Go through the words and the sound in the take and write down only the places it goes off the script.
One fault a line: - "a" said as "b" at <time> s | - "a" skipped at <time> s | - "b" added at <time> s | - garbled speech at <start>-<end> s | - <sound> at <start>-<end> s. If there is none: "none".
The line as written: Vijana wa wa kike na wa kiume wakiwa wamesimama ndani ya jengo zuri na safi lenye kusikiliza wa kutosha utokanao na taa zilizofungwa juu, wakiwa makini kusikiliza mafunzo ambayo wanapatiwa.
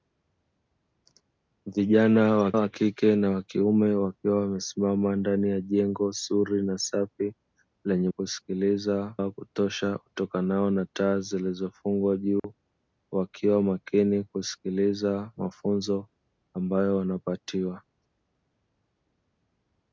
- dropout at 12.4-12.4 s